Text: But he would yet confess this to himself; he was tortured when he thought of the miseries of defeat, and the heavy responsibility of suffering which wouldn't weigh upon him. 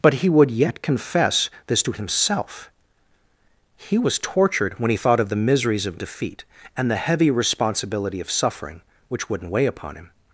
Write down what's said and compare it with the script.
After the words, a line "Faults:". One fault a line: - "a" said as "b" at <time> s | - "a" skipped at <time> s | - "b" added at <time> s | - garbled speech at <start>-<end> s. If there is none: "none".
But he would yet confess this to himself; he was tortured when he thought of the miseries of defeat, and the heavy responsibility of suffering which wouldn't weigh upon him.
Faults:
none